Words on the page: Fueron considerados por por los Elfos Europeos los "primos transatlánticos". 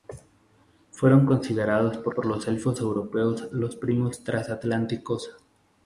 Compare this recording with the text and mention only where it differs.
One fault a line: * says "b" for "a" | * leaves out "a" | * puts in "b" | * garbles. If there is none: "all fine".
all fine